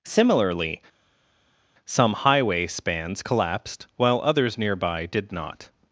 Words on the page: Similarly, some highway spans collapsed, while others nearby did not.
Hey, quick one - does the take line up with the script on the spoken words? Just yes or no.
yes